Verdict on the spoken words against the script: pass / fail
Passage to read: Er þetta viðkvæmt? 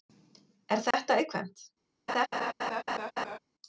pass